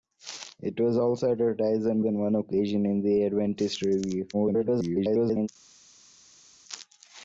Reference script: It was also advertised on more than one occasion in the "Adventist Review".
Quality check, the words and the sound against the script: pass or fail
fail